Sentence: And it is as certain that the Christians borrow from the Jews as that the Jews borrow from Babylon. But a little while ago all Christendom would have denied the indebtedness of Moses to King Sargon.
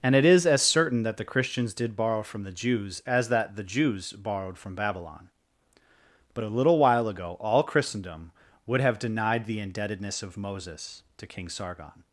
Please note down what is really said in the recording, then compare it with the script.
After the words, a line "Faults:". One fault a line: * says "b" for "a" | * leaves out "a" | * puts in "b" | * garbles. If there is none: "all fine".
And it is as certain that the Christians did borrow from the Jews as that the Jews borrowed from Babylon. But a little while ago all Christendom would have denied the indebtedness of Moses to King Sargon.
Faults:
* puts in "did"
* says "borrowed" for "borrow"